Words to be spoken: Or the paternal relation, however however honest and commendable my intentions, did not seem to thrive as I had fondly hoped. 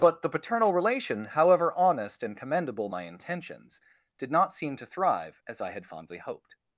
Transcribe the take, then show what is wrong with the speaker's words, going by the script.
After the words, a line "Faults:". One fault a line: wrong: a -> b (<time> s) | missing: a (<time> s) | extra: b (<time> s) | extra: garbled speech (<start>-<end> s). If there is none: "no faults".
But the paternal relation, however honest and commendable my intentions, did not seem to thrive as I had fondly hoped.
Faults:
wrong: Or -> But (0.0 s)
missing: however (1.8 s)